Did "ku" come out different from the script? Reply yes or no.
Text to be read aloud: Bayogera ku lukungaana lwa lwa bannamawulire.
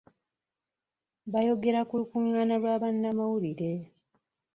no